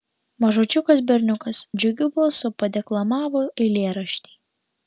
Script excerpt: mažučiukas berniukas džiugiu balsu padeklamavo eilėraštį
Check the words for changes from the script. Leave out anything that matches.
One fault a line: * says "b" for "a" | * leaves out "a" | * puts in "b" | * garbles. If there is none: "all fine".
all fine